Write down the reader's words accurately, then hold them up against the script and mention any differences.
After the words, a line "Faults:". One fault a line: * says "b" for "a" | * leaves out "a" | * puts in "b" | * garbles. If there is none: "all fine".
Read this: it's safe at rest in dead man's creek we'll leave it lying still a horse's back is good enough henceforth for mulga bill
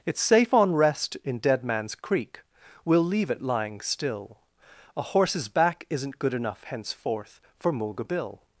it's safe on rest in dead man's creek we'll leave it lying still a horse's back isn't good enough henceforth for mulga bill
Faults:
* says "on" for "at"
* says "isn't" for "is"